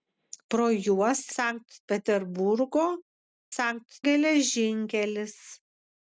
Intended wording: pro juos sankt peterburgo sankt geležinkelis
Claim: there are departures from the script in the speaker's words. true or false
false